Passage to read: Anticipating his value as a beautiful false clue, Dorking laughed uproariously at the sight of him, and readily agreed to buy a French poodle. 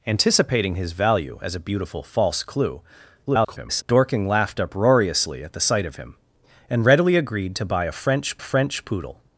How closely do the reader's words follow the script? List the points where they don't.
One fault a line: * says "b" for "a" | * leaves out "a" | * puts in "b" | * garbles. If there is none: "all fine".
* garbles
* puts in "French"